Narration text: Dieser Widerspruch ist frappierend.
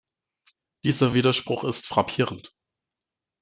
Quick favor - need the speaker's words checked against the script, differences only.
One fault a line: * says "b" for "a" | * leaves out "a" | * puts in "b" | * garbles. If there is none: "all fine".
all fine